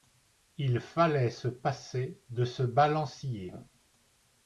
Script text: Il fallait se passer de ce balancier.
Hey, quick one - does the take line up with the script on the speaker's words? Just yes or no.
yes